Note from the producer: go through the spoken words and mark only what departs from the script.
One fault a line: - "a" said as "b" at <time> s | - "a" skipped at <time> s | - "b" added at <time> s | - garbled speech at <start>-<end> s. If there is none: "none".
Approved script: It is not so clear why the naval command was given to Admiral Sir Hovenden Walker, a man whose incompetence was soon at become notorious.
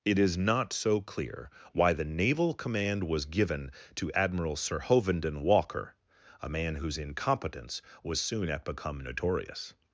none